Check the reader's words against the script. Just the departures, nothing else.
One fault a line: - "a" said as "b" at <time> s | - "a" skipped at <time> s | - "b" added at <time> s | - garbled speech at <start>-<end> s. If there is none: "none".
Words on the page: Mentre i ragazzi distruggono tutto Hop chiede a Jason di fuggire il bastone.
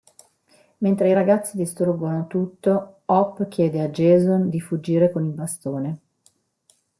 - "con" added at 5.1 s